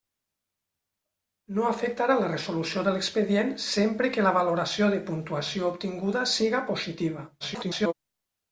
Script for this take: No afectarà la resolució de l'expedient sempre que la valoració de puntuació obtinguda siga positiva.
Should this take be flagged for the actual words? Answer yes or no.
yes